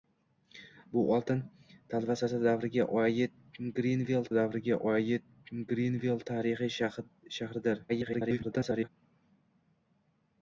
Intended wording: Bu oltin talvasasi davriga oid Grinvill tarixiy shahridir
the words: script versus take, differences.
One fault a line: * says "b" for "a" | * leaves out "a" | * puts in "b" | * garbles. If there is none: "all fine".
* puts in "davriga oid Grinvill"
* garbles